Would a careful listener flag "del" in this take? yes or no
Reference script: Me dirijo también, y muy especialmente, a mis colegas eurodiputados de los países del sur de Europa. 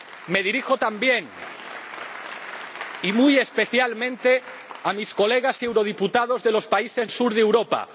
yes